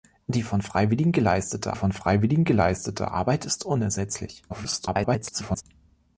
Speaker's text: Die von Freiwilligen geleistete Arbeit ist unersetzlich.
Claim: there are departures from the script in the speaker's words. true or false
true